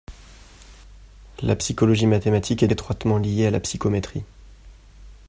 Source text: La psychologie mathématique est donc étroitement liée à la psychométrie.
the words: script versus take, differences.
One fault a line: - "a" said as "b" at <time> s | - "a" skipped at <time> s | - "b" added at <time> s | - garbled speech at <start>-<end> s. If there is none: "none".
- "donc" skipped at 2.7 s